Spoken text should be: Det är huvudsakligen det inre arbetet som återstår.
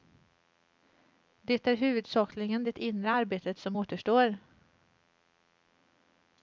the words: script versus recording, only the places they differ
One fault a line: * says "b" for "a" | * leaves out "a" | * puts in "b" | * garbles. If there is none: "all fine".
all fine